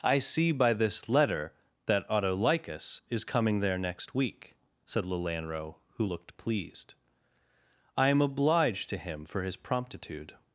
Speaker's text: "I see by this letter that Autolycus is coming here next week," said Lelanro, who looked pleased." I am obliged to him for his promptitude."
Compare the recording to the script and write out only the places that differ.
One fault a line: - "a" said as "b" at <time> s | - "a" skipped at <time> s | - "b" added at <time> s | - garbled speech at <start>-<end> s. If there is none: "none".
- "here" said as "there" at 3.6 s